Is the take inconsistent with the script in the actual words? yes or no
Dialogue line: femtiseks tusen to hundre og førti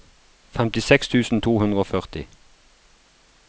no